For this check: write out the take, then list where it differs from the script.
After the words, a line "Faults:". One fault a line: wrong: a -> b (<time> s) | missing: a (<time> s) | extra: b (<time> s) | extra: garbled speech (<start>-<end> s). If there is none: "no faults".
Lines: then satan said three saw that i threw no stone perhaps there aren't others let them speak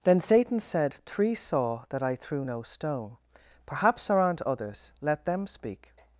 then satan said three saw that i threw no stone perhaps there aren't others let them speak
Faults:
no faults